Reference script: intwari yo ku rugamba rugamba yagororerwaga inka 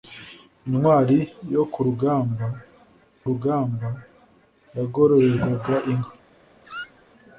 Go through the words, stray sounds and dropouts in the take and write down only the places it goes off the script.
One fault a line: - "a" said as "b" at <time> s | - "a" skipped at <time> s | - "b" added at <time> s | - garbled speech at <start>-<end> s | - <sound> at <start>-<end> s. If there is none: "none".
- squeak at 6.6-7.0 s